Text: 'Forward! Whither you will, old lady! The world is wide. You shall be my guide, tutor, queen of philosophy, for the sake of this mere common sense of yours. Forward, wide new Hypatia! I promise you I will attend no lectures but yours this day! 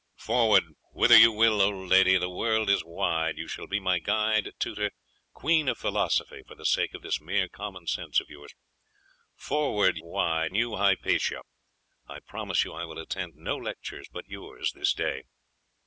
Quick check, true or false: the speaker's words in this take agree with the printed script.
true